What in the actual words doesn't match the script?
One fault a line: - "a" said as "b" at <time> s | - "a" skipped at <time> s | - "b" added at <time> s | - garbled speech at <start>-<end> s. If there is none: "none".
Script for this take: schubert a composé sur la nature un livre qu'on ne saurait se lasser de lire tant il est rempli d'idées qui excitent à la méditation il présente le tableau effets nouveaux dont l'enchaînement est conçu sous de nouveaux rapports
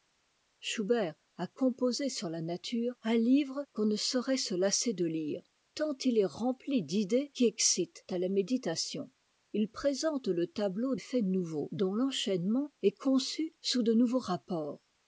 none